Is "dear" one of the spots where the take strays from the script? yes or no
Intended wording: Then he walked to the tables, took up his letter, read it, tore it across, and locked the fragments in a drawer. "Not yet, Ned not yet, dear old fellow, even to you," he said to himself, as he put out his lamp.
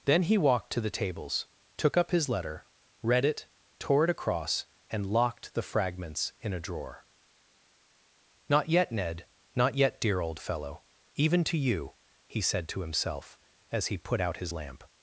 no